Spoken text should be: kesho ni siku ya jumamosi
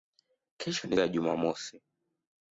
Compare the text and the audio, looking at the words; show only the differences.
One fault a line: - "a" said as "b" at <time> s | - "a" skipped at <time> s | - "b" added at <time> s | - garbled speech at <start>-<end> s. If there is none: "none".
- "siku" skipped at 1.0 s